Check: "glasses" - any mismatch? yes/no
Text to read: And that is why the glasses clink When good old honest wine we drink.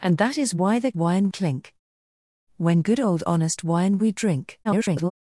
yes